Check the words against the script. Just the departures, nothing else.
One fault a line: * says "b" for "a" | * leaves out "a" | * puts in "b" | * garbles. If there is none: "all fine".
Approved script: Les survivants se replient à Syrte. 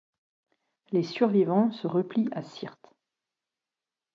all fine